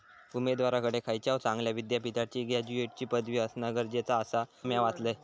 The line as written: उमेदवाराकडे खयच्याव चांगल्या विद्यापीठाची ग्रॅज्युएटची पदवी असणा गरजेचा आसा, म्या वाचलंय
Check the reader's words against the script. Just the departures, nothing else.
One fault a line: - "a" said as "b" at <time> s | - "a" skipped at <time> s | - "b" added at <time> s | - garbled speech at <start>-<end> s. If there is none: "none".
none